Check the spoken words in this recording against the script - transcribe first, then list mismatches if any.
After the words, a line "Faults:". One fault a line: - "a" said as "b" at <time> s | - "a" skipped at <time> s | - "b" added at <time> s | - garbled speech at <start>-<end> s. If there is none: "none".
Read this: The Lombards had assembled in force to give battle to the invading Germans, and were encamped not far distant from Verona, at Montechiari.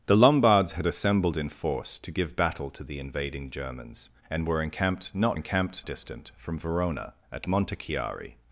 The Lombards had assembled in force to give battle to the invading Germans, and were encamped not encamped distant from Verona, at Montechiari.
Faults:
- "far" said as "encamped" at 5.3 s